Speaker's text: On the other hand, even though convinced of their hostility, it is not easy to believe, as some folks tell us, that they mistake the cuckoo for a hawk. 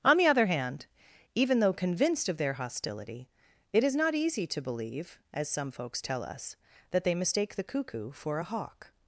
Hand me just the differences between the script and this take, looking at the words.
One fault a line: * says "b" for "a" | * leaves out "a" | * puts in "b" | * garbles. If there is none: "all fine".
all fine